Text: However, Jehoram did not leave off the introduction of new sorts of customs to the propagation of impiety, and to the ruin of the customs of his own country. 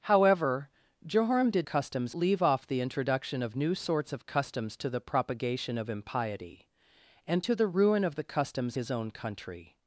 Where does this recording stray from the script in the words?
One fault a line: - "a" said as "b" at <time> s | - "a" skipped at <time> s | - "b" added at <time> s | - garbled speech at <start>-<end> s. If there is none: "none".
- "not" said as "customs" at 1.6 s
- "of" skipped at 8.8 s